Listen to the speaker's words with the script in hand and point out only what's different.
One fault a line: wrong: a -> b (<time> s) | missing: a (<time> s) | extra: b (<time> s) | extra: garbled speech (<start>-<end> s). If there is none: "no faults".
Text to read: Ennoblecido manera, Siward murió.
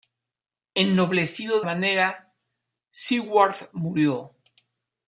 no faults